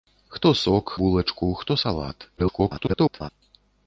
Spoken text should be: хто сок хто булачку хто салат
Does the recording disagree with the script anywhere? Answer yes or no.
yes